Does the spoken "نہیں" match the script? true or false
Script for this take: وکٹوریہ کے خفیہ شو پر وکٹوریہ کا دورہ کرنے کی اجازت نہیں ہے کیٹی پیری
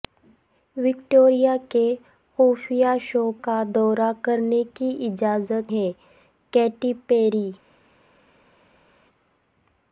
false